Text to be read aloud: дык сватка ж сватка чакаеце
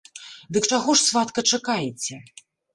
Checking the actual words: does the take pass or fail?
fail